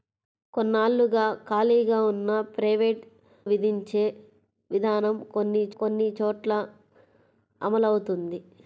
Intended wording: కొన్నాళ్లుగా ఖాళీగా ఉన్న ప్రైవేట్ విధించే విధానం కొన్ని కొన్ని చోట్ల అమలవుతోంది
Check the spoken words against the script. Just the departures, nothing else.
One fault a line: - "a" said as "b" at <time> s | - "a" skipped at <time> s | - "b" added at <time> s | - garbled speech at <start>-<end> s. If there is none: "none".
none